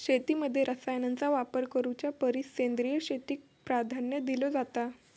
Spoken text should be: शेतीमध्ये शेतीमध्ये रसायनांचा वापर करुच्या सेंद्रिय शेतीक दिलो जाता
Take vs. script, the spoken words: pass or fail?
fail